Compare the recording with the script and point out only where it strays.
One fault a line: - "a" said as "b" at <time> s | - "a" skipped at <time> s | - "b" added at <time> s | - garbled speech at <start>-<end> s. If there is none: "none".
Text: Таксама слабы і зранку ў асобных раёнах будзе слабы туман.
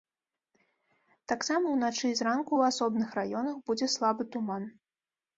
- "слабы" said as "ўначы" at 1.7 s